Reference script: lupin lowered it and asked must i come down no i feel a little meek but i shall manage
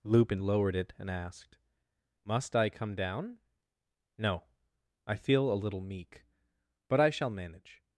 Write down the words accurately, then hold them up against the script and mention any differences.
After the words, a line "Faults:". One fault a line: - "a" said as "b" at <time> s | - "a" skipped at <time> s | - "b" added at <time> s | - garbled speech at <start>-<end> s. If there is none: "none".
lupin lowered it and asked must i come down no i feel a little meek but i shall manage
Faults:
none